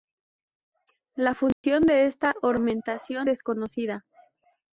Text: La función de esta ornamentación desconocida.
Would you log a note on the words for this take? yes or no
no